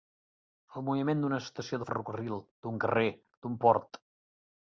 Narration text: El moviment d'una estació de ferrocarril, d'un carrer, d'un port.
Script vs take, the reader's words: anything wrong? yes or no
no